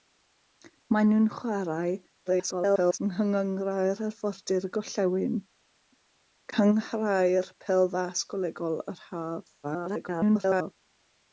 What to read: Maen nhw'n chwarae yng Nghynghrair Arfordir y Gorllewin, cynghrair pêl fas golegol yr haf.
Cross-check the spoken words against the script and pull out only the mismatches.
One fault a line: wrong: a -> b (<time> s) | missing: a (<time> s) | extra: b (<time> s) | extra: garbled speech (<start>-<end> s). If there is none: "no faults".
extra: garbled speech (2.3-3.0 s)
extra: garbled speech (9.6-10.7 s)